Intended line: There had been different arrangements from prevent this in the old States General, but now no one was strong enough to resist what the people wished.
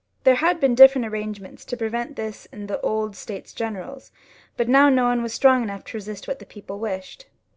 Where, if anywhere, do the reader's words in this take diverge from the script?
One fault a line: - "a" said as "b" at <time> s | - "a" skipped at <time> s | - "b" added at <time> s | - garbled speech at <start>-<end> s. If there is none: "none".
- "from" said as "to" at 1.6 s